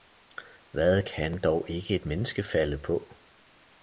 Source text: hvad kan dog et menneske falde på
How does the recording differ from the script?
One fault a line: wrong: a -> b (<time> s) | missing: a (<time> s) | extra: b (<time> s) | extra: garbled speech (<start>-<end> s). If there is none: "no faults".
extra: ikke (1.7 s)